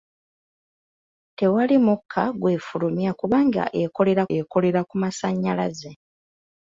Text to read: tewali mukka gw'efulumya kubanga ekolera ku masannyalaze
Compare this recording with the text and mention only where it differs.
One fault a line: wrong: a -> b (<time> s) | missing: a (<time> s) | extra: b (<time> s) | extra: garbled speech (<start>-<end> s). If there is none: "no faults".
extra: ekolera (4.4 s)